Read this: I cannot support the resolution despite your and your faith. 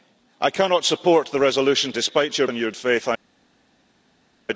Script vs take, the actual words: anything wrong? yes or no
no